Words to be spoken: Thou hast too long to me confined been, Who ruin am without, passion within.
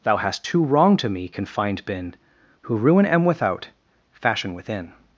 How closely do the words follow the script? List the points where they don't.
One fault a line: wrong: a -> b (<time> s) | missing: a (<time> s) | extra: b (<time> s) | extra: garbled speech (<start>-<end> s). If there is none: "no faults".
wrong: long -> wrong (0.6 s)
wrong: passion -> fashion (4.1 s)